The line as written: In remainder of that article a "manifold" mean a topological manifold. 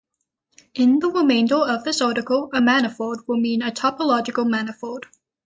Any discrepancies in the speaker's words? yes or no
yes